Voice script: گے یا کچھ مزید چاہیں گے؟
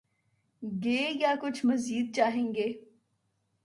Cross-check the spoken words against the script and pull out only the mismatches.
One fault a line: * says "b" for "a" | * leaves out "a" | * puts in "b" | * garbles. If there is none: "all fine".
all fine